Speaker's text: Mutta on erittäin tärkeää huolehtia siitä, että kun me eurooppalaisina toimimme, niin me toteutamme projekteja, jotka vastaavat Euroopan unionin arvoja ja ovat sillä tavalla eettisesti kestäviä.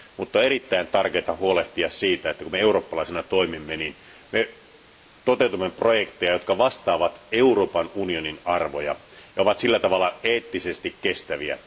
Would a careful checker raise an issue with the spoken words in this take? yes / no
no